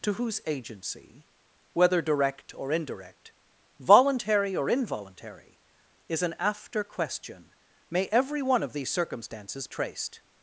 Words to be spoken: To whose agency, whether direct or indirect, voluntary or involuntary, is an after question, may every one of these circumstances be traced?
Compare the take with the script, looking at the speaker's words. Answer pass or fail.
fail